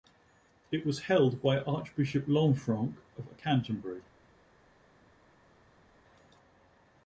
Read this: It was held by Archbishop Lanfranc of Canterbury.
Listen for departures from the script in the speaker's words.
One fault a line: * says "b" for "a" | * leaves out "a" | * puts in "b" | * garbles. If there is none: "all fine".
all fine